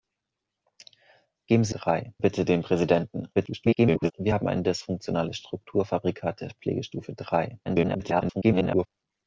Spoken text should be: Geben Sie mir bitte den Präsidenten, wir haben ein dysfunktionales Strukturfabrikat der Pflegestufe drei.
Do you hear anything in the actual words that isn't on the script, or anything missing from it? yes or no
yes